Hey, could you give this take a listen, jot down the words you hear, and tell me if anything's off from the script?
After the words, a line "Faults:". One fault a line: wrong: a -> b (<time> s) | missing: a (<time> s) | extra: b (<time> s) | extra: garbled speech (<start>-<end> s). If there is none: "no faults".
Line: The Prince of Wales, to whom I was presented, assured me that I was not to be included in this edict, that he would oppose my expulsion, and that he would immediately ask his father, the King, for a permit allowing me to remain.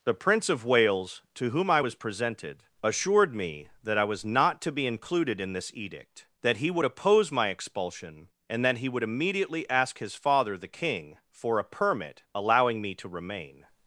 The Prince of Wales, to whom I was presented, assured me that I was not to be included in this edict, that he would oppose my expulsion, and that he would immediately ask his father, the King, for a permit allowing me to remain.
Faults:
no faults